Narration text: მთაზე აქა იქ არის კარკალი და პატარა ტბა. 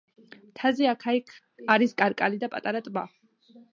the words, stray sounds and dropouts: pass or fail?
pass